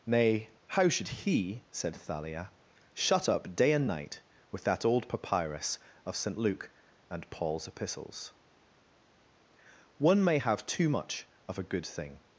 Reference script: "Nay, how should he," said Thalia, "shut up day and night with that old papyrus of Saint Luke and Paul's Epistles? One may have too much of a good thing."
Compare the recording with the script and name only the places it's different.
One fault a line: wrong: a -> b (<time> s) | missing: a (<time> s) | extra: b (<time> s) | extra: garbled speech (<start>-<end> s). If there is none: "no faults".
no faults